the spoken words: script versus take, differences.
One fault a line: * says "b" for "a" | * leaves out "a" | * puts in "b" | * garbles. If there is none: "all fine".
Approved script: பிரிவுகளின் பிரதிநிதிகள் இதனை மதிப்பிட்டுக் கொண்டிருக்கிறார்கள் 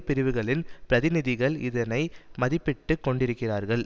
all fine